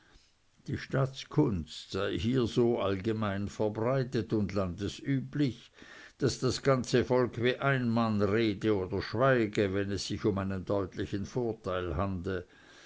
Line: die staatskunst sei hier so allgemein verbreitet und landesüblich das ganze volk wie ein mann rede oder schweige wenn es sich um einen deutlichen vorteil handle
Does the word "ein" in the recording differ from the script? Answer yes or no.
no